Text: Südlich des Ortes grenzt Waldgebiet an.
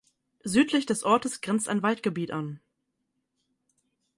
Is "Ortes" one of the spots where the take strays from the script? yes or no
no